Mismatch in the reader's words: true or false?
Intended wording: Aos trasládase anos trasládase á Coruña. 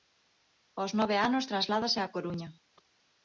true